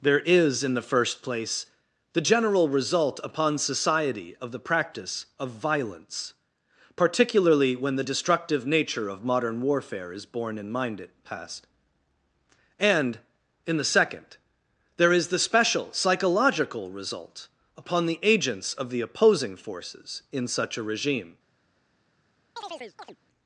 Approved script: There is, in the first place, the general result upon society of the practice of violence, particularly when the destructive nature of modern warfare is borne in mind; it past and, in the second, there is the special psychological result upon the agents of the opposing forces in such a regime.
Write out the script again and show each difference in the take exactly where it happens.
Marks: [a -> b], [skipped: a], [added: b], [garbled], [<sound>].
There is, in the first place, the general result upon society of the practice of violence, particularly when the destructive nature of modern warfare is borne in mind; it past and, in the second, there is the special psychological result upon the agents of the opposing forces in such a regime. [chirp]